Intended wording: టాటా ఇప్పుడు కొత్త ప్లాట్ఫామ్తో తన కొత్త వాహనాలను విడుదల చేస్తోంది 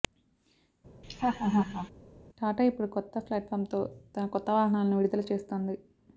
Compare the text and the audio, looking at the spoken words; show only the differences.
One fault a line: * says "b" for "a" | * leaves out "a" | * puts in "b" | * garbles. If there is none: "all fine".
all fine